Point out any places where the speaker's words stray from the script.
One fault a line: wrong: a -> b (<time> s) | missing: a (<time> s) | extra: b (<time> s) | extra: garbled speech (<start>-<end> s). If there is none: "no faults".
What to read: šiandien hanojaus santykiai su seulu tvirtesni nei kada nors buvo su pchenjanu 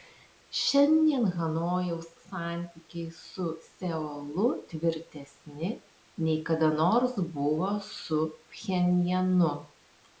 no faults